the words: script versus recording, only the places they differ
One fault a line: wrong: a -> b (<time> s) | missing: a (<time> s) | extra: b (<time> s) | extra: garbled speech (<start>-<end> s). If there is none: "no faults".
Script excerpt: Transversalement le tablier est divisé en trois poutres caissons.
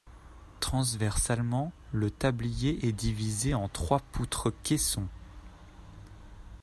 no faults